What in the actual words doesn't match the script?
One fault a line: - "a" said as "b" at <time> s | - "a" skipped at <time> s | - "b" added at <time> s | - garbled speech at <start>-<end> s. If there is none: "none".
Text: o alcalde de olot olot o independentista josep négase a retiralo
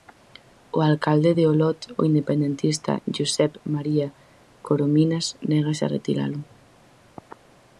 - "olot" skipped at 1.8 s
- "maría corominas" added at 3.7 s